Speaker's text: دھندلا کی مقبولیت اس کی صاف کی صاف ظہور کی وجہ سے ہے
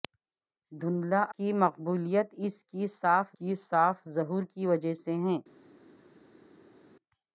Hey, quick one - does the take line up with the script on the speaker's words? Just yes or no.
yes